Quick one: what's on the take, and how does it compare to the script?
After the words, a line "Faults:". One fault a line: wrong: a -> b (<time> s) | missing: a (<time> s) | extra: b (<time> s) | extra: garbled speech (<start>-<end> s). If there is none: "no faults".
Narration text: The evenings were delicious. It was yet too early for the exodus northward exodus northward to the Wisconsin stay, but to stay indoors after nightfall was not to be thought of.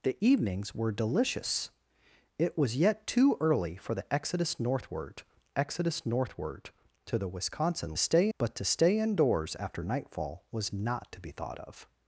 The evenings were delicious. It was yet too early for the exodus northward exodus northward to the Wisconsin stay, but to stay indoors after nightfall was not to be thought of.
Faults:
no faults